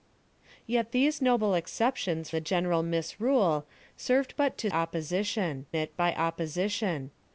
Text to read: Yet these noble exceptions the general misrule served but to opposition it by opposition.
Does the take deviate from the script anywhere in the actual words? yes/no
no